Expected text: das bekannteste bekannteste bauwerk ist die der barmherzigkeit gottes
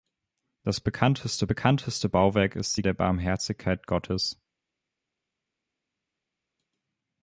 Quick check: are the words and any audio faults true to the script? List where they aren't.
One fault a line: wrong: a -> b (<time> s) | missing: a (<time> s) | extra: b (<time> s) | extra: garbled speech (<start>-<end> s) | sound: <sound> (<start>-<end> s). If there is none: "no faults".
no faults